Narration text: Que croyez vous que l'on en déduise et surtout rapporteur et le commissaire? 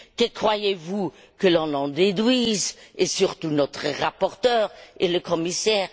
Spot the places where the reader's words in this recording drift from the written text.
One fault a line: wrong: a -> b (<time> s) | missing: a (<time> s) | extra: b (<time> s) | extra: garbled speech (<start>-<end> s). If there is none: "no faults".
extra: notre (3.5 s)